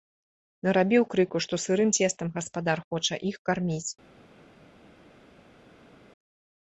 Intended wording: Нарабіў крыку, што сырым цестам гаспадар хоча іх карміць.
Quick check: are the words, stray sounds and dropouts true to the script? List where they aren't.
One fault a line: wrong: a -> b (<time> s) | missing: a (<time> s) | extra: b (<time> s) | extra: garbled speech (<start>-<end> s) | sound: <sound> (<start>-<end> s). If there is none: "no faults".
no faults